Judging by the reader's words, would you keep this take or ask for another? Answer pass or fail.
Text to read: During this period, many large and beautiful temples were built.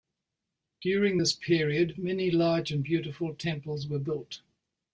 pass